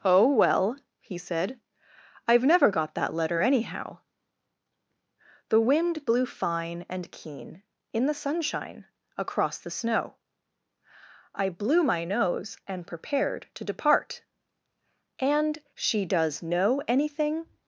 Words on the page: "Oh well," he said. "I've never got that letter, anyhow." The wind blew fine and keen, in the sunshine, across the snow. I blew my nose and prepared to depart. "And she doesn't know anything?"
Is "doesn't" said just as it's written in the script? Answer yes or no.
no